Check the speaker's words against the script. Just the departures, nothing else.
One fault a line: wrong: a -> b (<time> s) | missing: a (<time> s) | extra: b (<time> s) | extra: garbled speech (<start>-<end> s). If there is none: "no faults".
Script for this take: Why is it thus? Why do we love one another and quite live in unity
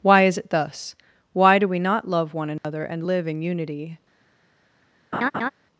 extra: not (1.8 s)
missing: quite (3.1 s)